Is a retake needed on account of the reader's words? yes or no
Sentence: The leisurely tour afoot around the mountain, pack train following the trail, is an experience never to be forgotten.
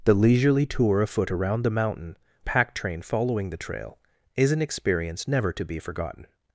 no